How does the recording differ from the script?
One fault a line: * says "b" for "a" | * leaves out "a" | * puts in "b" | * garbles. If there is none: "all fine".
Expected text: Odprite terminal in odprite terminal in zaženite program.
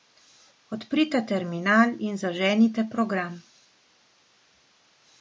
* leaves out "odprite terminal in"